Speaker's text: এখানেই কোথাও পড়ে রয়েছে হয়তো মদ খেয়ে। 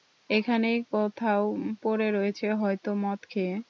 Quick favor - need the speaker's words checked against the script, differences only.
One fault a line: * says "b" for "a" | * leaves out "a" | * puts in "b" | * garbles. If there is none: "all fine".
all fine